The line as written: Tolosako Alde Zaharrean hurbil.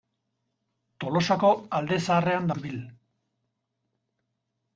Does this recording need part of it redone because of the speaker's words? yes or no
no